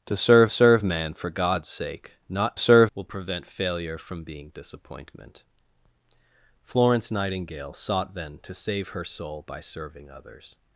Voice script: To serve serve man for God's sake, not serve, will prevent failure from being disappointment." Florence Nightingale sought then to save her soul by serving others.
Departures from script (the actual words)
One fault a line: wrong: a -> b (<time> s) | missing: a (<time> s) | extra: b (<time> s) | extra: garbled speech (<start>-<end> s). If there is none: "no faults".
no faults